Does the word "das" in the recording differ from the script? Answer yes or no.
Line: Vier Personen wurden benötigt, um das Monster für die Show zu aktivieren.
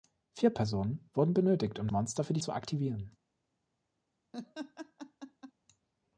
yes